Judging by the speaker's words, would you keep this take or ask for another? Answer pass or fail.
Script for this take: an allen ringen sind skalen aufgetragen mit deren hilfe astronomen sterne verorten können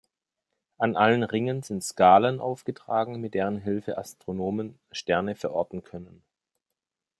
pass